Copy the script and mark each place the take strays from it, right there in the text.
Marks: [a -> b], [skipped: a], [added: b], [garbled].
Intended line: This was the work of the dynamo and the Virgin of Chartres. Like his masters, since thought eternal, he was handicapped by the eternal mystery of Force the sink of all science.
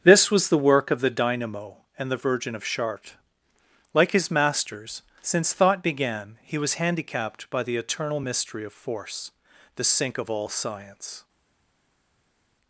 This was the work of the dynamo and the Virgin of Chartres. Like his masters, since thought [eternal, -> began] he was handicapped by the eternal mystery of Force the sink of all science.